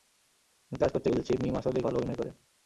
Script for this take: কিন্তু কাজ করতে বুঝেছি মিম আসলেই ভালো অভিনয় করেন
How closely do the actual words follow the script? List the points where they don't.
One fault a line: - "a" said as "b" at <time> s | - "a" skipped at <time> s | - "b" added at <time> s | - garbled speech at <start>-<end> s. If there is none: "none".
none